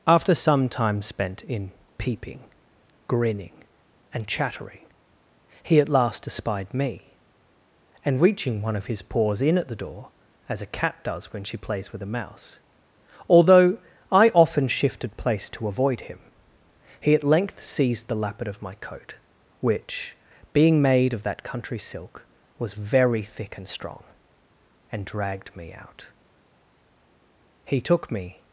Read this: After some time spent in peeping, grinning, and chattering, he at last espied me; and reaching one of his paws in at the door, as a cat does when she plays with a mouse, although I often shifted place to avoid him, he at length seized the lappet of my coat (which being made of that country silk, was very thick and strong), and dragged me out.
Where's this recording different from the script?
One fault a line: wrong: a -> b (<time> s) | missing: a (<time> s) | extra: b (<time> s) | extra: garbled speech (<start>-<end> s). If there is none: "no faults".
extra: He took me (27.6 s)